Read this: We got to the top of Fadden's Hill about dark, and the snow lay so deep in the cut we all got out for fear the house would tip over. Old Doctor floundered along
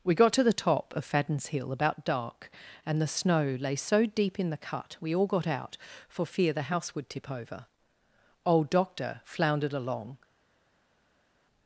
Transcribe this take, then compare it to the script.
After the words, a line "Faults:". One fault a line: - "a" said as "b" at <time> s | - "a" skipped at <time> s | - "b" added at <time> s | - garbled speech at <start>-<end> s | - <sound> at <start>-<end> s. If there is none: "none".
We got to the top of Fadden's Hill about dark, and the snow lay so deep in the cut we all got out for fear the house would tip over. Old Doctor floundered along
Faults:
none